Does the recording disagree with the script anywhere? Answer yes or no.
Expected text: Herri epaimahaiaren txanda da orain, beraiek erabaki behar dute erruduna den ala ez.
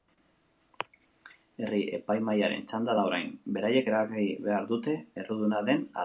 no